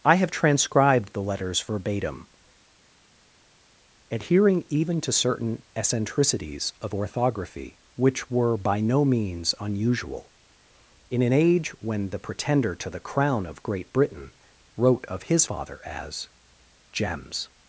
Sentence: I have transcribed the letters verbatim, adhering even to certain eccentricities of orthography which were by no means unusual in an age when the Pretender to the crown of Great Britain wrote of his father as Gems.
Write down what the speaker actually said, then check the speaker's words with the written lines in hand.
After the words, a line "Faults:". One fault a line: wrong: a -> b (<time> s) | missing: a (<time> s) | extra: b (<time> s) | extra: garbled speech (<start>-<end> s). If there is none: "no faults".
I have transcribed the letters verbatim, adhering even to certain eccentricities of orthography which were by no means unusual in an age when the Pretender to the crown of Great Britain wrote of his father as Gems.
Faults:
no faults